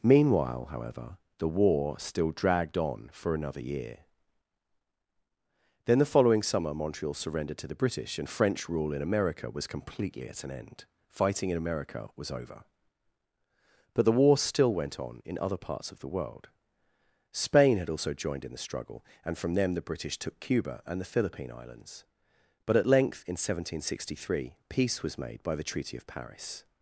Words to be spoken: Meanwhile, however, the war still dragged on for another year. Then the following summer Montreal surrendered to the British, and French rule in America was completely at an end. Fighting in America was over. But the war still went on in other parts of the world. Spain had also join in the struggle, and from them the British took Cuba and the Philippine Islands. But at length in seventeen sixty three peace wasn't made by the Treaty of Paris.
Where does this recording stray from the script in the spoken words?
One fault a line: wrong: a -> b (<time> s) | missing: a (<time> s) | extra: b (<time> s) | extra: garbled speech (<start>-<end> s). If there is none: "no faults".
wrong: join -> joined (18.1 s)
wrong: wasn't -> was (25.0 s)